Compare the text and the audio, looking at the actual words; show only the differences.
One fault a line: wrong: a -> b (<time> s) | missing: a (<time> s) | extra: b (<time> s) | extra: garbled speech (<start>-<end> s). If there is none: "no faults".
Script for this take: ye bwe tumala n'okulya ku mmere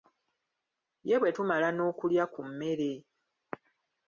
no faults